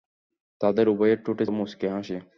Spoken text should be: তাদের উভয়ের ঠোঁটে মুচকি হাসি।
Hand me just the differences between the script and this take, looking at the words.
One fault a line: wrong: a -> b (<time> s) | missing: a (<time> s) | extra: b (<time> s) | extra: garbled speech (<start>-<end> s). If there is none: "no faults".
no faults